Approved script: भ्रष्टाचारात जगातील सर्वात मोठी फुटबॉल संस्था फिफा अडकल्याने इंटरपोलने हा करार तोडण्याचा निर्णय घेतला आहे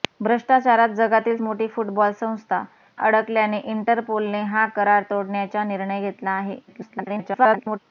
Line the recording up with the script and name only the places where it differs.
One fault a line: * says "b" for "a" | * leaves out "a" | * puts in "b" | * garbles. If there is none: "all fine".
* leaves out "सर्वात"
* leaves out "फिफा"
* garbles